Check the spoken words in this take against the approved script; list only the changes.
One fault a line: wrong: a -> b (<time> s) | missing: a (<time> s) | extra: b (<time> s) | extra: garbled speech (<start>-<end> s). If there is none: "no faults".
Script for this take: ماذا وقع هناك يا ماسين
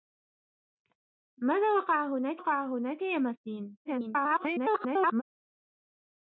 extra: وقع هناك (2.4 s)
extra: garbled speech (3.8-5.2 s)